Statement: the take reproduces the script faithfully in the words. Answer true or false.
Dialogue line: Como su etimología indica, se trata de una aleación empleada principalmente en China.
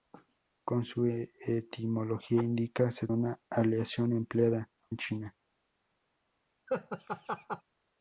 false